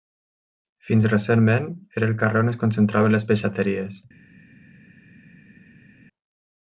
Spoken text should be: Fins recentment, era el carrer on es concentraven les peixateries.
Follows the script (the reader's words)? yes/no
yes